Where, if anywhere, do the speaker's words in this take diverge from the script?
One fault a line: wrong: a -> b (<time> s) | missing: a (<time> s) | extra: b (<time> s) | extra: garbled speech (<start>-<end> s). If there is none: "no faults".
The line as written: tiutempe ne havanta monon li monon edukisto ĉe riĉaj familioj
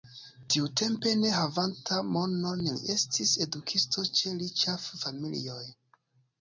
wrong: monon -> estis (3.0 s)